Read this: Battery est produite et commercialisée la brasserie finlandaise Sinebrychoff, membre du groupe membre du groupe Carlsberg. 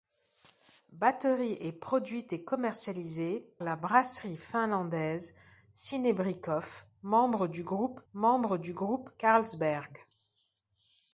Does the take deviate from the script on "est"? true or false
false